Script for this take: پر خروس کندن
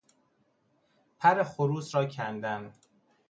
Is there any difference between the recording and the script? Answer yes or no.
yes